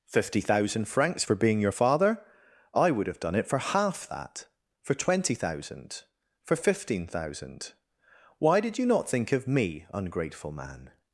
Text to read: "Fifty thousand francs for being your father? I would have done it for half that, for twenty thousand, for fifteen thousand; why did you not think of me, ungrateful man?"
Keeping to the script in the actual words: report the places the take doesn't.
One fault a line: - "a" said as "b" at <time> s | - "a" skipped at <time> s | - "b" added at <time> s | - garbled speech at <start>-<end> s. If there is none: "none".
none